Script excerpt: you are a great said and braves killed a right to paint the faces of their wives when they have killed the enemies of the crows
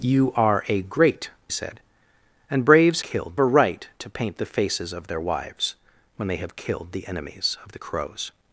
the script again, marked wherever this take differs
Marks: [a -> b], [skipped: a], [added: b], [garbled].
you are a great said and braves killed a right to paint the faces of their wives when they have killed the enemies of the crows